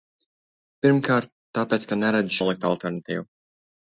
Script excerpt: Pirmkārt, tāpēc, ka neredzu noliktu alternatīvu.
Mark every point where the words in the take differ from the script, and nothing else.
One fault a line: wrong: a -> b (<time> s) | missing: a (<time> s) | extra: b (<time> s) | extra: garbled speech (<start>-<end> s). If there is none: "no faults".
no faults